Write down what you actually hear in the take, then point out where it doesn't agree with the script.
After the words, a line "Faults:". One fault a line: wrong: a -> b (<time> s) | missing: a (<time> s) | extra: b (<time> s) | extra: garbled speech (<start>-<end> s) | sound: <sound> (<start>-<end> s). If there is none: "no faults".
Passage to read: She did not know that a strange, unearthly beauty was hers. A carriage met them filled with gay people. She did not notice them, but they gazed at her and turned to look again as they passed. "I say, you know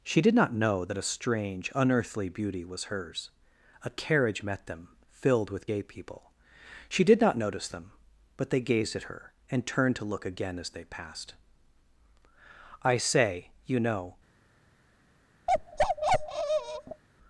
She did not know that a strange, unearthly beauty was hers. A carriage met them filled with gay people. She did not notice them, but they gazed at her and turned to look again as they passed. "I say, you know
Faults:
sound: bark (15.5-17.0 s)